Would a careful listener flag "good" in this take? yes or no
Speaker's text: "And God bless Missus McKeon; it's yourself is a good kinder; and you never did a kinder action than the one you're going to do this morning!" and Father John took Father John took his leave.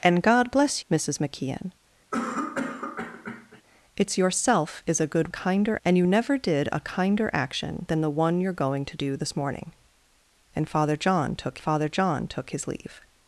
no